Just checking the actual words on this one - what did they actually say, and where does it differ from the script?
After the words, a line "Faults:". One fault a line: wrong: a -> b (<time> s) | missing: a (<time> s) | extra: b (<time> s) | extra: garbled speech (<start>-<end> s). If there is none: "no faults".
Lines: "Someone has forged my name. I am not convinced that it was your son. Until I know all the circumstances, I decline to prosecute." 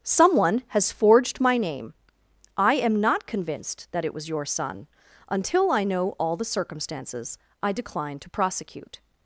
"Someone has forged my name. I am not convinced that it was your son. Until I know all the circumstances, I decline to prosecute."
Faults:
no faults